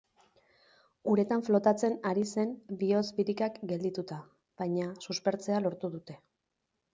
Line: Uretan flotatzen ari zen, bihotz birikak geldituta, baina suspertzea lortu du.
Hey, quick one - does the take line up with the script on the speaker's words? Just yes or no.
no